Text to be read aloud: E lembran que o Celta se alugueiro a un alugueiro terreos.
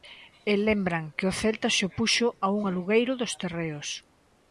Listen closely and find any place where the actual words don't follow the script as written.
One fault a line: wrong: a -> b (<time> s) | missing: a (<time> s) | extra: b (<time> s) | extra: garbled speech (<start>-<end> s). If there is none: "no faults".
wrong: alugueiro -> opuxo (1.9 s)
extra: dos (3.2 s)